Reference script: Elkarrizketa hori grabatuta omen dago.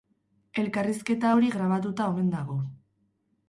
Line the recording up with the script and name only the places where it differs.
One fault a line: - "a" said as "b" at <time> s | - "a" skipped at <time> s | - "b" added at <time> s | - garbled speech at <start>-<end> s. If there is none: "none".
none